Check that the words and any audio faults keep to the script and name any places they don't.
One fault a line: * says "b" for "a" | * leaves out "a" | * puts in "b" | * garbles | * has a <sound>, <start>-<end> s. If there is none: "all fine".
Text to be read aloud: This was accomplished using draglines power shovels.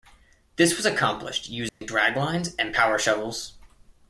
* has a dropout, 1.7-1.8 s
* puts in "and"